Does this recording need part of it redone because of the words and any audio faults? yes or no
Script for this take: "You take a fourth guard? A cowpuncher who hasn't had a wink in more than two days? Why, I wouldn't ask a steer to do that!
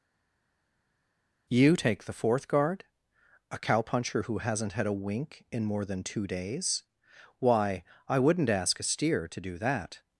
yes